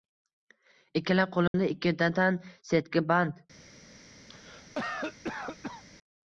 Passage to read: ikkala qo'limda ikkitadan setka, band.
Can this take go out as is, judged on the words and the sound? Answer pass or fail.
fail